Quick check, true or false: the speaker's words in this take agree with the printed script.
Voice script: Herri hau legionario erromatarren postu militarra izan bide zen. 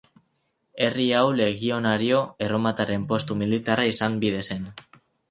true